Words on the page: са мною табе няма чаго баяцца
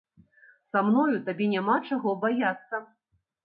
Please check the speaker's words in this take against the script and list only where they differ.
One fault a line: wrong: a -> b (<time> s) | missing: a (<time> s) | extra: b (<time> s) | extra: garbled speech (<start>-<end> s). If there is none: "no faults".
no faults